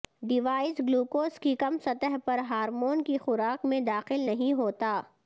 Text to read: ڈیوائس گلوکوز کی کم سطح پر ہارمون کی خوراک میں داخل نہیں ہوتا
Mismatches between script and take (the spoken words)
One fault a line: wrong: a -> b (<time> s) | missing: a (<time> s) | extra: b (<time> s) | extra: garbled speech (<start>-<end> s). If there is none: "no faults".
no faults